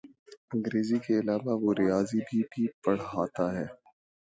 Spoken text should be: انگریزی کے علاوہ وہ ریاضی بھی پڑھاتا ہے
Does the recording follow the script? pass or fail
fail